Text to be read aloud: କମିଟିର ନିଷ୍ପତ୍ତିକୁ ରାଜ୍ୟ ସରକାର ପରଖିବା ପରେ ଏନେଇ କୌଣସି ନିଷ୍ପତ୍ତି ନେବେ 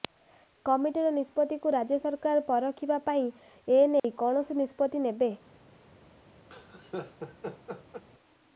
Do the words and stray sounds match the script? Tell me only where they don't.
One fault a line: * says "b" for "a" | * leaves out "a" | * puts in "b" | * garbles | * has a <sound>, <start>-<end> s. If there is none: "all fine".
* has a dropout, 4.0-4.0 s
* has a laugh, 6.5-8.0 s